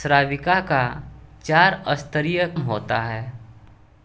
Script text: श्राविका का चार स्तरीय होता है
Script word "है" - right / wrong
right